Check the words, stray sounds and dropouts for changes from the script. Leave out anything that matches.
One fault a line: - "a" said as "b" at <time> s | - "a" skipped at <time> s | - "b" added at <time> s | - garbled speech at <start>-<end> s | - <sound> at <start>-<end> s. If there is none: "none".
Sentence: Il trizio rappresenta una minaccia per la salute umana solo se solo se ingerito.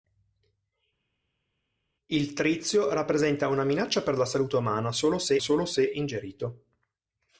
none